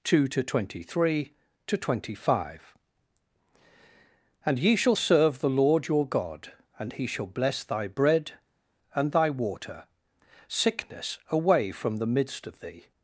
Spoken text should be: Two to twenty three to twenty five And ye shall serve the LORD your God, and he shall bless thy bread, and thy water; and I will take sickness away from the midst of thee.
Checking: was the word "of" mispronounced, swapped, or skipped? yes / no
no